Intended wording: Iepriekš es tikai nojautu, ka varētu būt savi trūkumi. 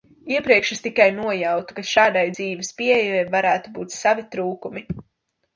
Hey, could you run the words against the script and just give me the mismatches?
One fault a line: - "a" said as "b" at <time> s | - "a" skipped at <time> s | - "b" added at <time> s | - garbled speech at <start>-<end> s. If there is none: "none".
- "šādai dzīves pieejai" added at 1.9 s